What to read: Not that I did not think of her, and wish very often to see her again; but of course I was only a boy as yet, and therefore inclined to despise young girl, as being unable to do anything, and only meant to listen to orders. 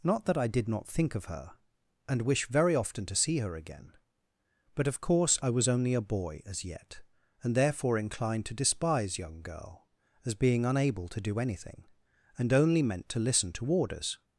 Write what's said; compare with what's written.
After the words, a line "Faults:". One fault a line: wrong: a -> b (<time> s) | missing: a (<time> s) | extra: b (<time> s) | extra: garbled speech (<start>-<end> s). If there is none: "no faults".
Not that I did not think of her, and wish very often to see her again; but of course I was only a boy as yet, and therefore inclined to despise young girl, as being unable to do anything, and only meant to listen to orders.
Faults:
no faults